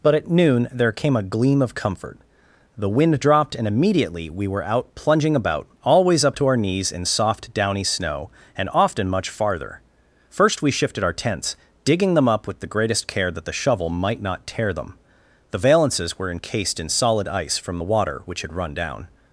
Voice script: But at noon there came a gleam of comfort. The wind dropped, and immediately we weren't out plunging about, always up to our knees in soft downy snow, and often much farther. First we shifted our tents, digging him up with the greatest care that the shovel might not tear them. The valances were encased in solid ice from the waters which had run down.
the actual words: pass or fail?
fail